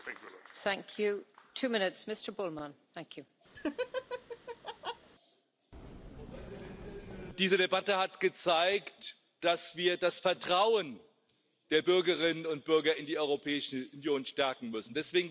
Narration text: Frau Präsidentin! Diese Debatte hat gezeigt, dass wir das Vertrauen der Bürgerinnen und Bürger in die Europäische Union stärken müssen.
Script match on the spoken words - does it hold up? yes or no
yes